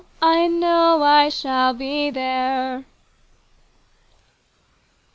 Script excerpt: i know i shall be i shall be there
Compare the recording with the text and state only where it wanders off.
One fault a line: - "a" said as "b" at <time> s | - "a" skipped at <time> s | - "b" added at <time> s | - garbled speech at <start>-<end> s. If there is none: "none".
- "i shall be" skipped at 2.1 s